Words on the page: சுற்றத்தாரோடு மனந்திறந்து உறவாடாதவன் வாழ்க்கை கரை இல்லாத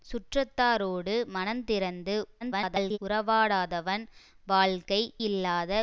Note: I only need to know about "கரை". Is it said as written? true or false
false